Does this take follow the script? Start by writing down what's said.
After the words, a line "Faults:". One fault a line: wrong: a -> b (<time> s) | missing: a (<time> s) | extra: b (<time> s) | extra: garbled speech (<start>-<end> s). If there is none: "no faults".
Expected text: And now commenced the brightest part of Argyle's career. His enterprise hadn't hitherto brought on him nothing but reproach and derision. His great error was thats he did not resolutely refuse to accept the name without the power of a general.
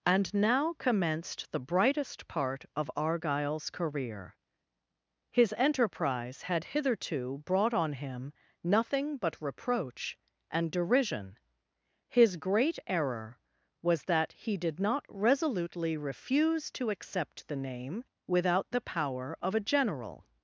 And now commenced the brightest part of Argyle's career. His enterprise had hitherto brought on him nothing but reproach and derision. His great error was that he did not resolutely refuse to accept the name without the power of a general.
Faults:
wrong: hadn't -> had (6.4 s)
wrong: thats -> that (14.1 s)